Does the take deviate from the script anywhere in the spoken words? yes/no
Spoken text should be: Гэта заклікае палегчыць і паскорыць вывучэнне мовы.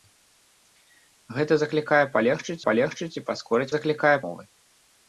yes